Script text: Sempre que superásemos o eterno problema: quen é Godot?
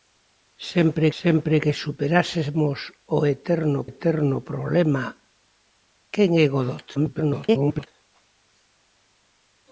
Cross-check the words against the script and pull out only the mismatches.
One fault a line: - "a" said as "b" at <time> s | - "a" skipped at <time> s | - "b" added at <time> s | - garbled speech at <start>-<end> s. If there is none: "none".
- "sempre" added at 1.2 s
- "eterno" added at 3.9 s
- garbled speech at 6.9-7.9 s